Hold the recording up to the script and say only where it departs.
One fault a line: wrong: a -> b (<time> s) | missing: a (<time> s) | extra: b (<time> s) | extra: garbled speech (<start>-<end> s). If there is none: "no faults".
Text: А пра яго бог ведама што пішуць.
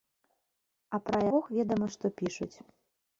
missing: яго (1.2 s)